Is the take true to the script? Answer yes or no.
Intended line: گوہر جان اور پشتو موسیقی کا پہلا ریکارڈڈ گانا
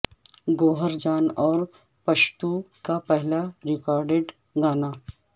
no